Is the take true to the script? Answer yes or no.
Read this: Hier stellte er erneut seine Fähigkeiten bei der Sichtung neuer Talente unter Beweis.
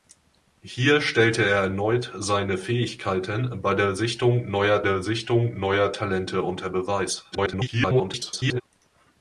no